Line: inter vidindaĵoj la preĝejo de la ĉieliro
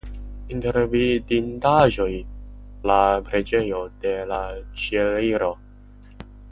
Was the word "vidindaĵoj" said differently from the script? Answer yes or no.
no